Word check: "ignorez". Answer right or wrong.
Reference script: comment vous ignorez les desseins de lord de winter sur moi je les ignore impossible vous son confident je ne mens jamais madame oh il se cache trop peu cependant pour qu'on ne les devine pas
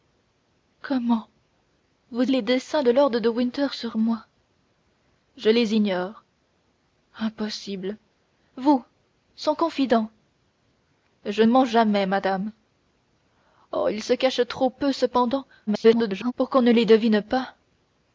wrong